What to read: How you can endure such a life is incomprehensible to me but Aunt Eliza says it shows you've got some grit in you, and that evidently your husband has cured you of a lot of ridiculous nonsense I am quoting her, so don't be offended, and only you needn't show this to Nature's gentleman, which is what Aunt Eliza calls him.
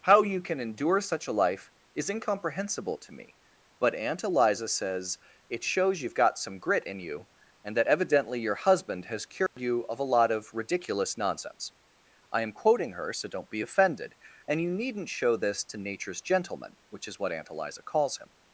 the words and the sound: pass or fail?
fail